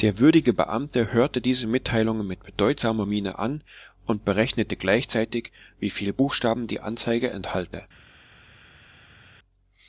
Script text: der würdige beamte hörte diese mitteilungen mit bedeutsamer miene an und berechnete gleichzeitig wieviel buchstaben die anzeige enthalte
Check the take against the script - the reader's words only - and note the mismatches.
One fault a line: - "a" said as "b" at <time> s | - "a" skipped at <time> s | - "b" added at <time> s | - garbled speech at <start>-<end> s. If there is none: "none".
none